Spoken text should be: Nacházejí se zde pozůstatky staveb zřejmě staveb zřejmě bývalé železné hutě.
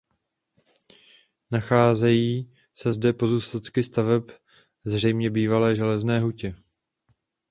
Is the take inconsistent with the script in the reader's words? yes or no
yes